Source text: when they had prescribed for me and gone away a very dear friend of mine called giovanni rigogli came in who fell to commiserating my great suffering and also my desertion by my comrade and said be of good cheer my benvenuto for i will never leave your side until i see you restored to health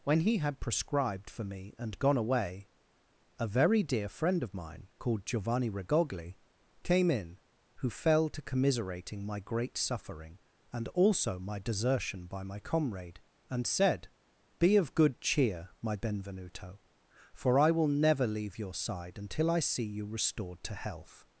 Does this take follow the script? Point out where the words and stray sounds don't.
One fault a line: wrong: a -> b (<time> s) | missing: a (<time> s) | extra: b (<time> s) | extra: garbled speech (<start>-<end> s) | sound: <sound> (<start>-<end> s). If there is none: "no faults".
wrong: they -> he (0.2 s)